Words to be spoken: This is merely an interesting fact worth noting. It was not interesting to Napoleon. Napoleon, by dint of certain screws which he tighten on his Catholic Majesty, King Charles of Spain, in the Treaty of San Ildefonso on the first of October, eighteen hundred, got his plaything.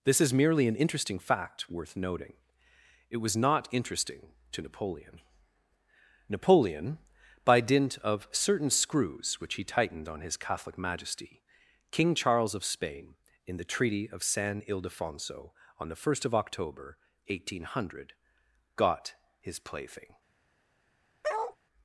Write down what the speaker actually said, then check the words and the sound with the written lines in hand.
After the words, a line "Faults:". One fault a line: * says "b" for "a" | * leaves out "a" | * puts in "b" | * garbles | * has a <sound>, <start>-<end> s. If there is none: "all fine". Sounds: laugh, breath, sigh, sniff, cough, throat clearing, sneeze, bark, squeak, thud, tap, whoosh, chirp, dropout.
This is merely an interesting fact worth noting. It was not interesting to Napoleon. Napoleon, by dint of certain screws which he tightened on his Catholic Majesty, King Charles of Spain, in the Treaty of San Ildefonso on the first of October, eighteen hundred, got his plaything.
Faults:
* says "tightened" for "tighten"
* has a bark, 21.2-21.6 s